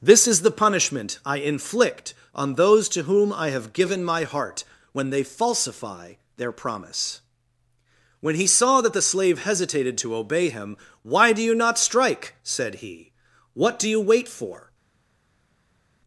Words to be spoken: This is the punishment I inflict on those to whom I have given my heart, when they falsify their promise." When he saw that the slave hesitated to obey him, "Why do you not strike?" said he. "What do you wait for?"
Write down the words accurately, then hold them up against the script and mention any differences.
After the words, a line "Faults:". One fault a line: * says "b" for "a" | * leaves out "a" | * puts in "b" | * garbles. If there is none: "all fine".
This is the punishment I inflict on those to whom I have given my heart, when they falsify their promise." When he saw that the slave hesitated to obey him, "Why do you not strike?" said he. "What do you wait for?"
Faults:
all fine